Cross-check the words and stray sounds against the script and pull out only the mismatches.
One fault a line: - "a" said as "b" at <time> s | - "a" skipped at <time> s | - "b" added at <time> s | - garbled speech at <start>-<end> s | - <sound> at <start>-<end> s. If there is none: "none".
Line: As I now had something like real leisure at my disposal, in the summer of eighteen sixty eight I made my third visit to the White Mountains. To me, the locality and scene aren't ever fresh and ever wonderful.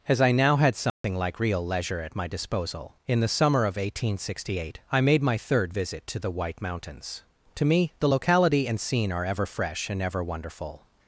- dropout at 0.9-1.0 s
- "aren't" said as "are" at 9.1 s